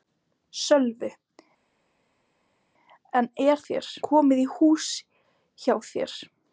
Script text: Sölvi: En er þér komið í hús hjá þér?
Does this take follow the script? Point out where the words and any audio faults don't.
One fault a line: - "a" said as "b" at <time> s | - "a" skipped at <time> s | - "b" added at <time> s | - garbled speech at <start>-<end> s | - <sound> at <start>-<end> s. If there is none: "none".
none